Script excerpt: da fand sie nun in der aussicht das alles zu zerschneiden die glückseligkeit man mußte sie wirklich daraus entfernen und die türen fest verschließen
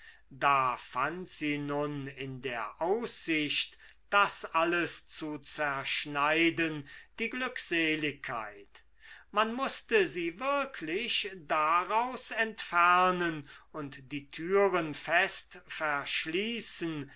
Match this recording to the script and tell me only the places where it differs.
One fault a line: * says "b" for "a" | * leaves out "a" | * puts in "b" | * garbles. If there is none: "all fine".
all fine